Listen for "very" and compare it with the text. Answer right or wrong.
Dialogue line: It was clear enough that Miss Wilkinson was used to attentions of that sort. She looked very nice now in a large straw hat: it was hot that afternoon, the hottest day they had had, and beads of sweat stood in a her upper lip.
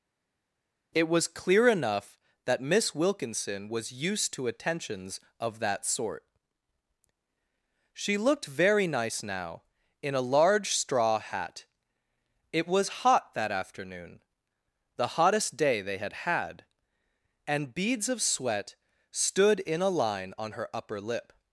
right